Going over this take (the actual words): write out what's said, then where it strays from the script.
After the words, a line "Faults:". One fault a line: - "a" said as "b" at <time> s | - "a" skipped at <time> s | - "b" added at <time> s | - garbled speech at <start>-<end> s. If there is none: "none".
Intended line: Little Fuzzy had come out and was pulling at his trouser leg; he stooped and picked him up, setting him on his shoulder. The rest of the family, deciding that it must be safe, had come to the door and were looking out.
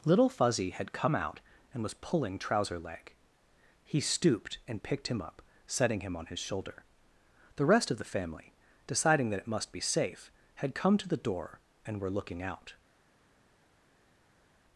Little Fuzzy had come out and was pulling trouser leg; he stooped and picked him up, setting him on his shoulder. The rest of the family, deciding that it must be safe, had come to the door and were looking out.
Faults:
- "at his" skipped at 2.4 s